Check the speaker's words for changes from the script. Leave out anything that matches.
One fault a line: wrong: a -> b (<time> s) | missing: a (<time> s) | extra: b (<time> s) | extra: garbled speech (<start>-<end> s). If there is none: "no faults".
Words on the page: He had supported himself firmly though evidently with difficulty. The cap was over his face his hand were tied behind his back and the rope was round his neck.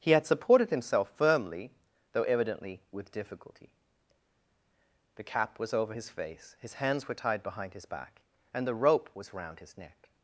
wrong: hand -> hands (6.7 s)